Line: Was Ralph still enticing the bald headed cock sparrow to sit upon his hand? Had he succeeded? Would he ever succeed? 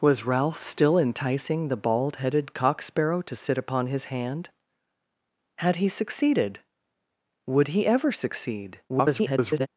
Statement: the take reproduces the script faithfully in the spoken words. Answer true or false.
false